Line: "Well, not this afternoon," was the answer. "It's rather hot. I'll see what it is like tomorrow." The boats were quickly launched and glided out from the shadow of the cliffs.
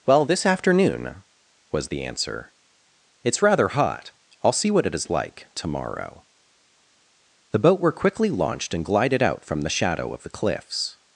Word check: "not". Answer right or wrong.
wrong